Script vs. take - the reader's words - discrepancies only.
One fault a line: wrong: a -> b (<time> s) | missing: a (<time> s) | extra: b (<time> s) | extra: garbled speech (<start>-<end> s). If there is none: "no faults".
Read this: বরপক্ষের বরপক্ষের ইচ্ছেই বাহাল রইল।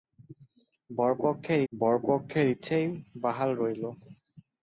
no faults